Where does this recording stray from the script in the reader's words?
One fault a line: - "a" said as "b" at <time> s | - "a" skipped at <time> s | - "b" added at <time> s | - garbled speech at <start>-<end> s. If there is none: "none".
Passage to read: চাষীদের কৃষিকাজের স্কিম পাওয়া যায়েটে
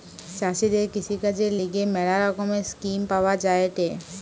- "লিগে ম্যালা রকমের" added at 1.6 s